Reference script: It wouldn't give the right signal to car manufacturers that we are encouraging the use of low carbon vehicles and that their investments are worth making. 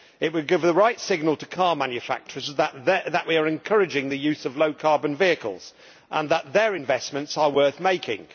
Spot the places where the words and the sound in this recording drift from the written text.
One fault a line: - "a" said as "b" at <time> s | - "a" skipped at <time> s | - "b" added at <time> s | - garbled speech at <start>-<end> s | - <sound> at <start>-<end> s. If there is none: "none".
- "wouldn't" said as "would" at 0.3 s